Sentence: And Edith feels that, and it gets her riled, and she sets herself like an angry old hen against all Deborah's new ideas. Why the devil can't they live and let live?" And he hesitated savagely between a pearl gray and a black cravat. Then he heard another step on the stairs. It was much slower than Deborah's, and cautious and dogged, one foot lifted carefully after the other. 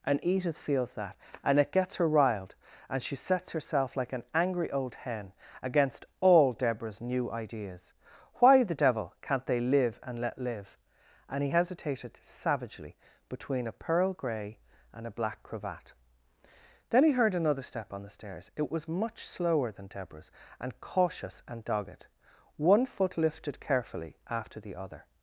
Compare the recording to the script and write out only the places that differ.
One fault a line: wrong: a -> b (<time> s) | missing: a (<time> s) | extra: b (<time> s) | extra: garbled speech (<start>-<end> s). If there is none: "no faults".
no faults